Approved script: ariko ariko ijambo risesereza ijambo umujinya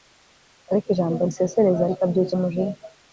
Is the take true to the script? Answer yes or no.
no